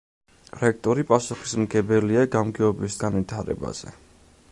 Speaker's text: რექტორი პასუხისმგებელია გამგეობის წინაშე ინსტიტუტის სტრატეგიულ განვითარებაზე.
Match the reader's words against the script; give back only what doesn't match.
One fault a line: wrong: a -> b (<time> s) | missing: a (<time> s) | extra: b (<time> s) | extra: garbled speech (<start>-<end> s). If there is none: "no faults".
missing: წინაშე ინსტიტუტის სტრატეგიულ (3.0 s)